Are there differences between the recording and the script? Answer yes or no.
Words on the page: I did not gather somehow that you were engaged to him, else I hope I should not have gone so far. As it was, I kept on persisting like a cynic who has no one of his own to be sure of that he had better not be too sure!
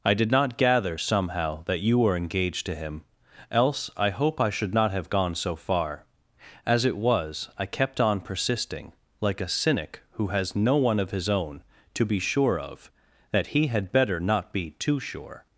no